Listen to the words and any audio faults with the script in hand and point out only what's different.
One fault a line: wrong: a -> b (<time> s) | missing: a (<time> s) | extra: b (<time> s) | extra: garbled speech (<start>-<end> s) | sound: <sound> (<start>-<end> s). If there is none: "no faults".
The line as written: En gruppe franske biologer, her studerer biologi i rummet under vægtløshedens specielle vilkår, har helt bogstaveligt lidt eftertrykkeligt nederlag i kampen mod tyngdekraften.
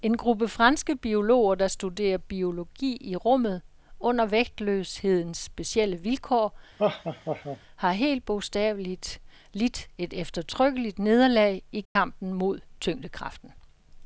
wrong: her -> der (1.5 s)
sound: laugh (6.8-7.6 s)
extra: et (10.0 s)
sound: dropout (11.9-12.0 s)